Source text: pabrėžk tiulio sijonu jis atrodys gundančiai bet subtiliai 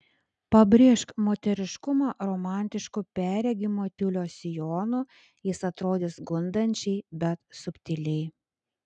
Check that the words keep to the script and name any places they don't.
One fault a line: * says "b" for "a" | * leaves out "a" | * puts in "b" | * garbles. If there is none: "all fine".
* puts in "moteriškumą romantišku perregimo"